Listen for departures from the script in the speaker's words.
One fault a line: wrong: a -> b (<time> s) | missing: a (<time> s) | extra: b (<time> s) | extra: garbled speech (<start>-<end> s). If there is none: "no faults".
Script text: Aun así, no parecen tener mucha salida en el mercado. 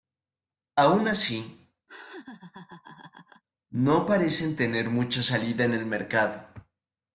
no faults